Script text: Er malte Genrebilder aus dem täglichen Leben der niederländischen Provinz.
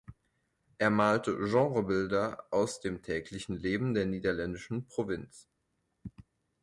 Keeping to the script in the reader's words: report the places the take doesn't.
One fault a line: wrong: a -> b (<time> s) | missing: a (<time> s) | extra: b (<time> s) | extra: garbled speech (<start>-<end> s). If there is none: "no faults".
no faults